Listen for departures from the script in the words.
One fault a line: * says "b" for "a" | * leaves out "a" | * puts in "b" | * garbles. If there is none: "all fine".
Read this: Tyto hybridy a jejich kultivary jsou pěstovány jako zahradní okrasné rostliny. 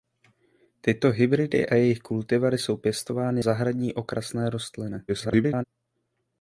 * leaves out "jako"
* garbles